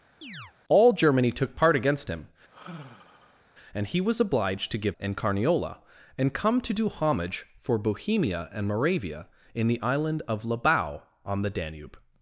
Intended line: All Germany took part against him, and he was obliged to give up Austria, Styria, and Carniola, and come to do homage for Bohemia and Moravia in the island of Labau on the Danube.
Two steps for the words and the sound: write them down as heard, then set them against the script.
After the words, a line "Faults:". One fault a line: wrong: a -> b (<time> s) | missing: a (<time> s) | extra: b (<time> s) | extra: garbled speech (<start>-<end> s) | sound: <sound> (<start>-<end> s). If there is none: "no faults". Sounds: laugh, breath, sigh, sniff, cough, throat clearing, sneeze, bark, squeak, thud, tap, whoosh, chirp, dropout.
All Germany took part against him, and he was obliged to give and Carniola, and come to do homage for Bohemia and Moravia in the island of Labau on the Danube.
Faults:
sound: chirp (0.2-0.5 s)
sound: sigh (2.5-3.4 s)
missing: up Austria Styria (5.0 s)